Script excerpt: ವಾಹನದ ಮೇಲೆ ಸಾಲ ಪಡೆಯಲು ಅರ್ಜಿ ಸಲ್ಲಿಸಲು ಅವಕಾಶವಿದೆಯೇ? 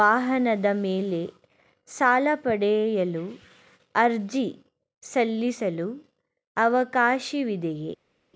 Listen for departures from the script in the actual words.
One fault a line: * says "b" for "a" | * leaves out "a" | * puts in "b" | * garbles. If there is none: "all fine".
all fine